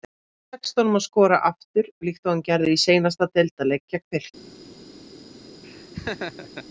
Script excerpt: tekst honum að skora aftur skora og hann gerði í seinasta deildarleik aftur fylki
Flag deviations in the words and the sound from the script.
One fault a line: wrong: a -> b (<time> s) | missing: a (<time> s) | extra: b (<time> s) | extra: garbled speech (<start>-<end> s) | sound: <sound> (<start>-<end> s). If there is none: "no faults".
wrong: skora -> líkt (2.1 s)
wrong: aftur -> gegn (3.9 s)
sound: laugh (5.6-6.7 s)